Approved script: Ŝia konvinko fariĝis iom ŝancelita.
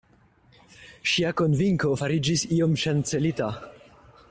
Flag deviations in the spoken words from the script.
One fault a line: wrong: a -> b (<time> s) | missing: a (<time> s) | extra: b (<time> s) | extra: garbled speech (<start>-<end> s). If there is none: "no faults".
no faults